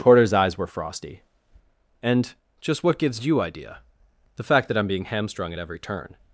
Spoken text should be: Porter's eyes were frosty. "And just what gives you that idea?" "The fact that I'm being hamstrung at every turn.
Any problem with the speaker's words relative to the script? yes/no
yes